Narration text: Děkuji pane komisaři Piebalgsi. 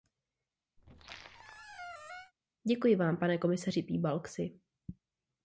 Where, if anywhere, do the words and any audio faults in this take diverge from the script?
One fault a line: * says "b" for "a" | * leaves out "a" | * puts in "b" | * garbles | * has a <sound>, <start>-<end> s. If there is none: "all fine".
* has a squeak, 0.8-2.3 s
* puts in "vám"